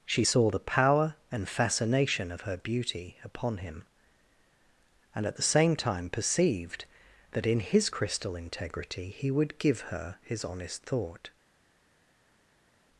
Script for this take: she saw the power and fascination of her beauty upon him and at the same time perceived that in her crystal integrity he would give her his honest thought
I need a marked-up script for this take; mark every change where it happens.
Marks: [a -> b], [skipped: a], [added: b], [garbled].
she saw the power and fascination of her beauty upon him and at the same time perceived that in [her -> his] crystal integrity he would give her his honest thought